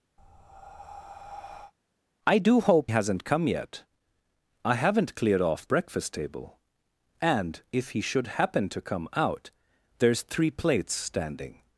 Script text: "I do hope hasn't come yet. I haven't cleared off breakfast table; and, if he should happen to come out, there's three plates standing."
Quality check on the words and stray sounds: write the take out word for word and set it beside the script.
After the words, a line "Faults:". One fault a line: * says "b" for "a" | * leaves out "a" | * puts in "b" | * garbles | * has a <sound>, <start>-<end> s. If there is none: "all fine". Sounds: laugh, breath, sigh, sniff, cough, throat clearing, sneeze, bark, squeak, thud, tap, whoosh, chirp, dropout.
"I do hope hasn't come yet. I haven't cleared off breakfast table; and, if he should happen to come out, there's three plates standing."
Faults:
* has a breath, 0.2-1.7 s